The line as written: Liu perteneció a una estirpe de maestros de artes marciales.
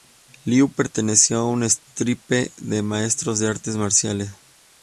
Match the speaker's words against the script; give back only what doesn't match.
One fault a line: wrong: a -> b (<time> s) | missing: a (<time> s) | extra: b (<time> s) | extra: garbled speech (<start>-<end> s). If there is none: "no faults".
no faults